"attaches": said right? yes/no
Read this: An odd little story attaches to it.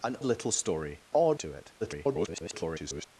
no